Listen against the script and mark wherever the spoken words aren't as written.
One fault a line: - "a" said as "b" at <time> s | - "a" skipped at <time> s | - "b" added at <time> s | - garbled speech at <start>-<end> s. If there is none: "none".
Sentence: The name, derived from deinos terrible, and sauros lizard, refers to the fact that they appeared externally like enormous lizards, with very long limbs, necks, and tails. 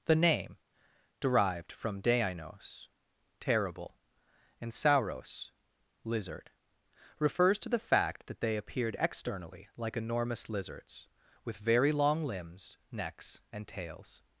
none